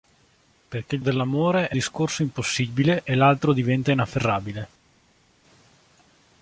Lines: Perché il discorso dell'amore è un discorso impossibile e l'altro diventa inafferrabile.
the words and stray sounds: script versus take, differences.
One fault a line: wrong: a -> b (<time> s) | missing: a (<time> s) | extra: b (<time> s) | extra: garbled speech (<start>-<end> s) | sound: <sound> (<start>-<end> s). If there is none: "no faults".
missing: discorso (1.0 s)
missing: un (1.8 s)